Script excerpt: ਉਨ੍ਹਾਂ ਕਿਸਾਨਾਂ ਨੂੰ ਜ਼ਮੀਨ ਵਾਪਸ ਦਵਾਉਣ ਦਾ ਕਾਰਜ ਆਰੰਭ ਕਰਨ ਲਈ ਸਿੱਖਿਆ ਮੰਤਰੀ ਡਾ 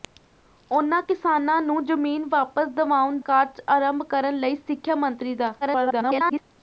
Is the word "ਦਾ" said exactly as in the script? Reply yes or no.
no